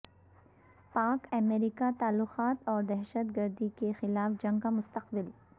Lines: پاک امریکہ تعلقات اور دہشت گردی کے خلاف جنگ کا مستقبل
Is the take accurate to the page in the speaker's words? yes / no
yes